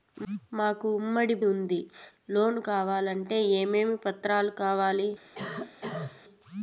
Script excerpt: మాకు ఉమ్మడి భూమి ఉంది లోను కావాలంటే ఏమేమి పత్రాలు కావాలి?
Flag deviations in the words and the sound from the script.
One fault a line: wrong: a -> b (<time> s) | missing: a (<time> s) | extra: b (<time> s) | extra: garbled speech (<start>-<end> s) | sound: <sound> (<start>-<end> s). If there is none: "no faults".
missing: భూమి (1.4 s)
sound: cough (5.3-6.2 s)